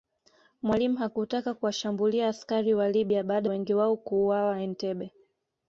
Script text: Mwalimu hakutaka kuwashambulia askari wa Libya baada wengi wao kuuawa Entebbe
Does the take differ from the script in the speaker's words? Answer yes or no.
no